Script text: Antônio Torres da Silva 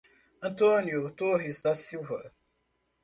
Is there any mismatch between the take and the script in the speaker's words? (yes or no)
no